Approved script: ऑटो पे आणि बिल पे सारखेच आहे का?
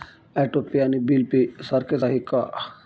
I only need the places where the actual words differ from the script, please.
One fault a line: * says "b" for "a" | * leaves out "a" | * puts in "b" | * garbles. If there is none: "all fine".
all fine